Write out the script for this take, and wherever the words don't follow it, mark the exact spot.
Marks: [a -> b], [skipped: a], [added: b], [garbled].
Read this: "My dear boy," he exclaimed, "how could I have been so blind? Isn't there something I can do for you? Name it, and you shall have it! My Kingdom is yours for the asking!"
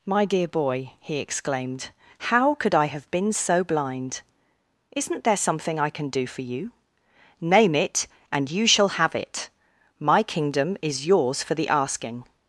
"My dear boy," he exclaimed, "how could I have been so blind? Isn't there something I can do for you? Name it, and you shall have it! My Kingdom is yours for the asking!"